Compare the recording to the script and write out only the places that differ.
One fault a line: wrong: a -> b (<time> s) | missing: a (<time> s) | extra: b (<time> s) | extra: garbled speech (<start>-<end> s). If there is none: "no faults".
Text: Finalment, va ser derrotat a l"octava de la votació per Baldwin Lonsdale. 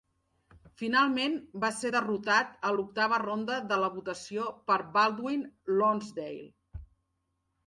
extra: ronda (3.2 s)